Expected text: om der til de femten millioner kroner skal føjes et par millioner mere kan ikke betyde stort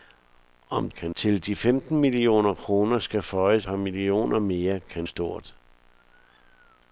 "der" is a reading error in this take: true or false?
true